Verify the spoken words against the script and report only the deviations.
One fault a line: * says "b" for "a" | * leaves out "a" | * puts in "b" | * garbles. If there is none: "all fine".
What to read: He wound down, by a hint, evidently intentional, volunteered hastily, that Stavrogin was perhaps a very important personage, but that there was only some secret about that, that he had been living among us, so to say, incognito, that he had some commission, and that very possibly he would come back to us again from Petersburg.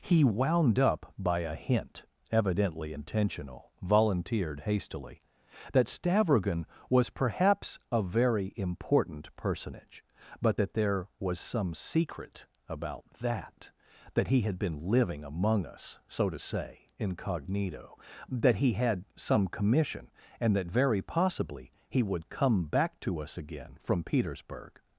* says "up" for "down"
* leaves out "only"